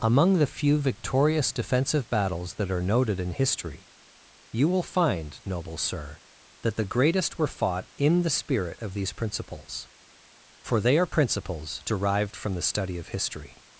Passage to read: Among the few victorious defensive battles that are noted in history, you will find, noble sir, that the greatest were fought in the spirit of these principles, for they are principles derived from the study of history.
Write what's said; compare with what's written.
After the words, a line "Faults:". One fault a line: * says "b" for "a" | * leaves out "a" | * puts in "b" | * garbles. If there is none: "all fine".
Among the few victorious defensive battles that are noted in history, you will find, noble sir, that the greatest were fought in the spirit of these principles, for they are principles derived from the study of history.
Faults:
all fine